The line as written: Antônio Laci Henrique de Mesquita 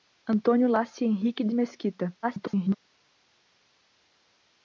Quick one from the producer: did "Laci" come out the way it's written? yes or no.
yes